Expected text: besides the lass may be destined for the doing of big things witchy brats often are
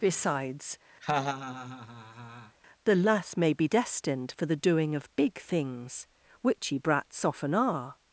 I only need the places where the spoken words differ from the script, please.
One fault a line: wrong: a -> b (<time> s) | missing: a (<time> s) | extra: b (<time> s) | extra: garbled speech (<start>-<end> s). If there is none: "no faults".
no faults